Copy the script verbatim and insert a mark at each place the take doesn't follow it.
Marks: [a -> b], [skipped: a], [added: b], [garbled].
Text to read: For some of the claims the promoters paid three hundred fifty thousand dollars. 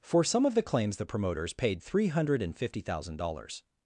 For some of the claims the promoters paid three hundred fifty thousand dollars.